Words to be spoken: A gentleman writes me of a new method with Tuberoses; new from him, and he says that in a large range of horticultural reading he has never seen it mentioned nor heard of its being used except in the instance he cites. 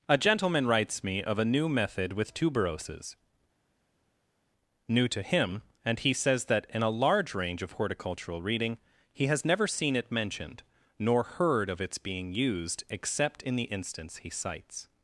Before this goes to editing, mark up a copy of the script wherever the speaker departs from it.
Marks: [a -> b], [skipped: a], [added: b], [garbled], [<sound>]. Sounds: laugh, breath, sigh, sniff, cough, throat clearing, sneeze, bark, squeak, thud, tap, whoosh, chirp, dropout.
A gentleman writes me of a new method with Tuberoses; new [from -> to] him, and he says that in a large range of horticultural reading he has never seen it mentioned nor heard of its being used except in the instance he cites.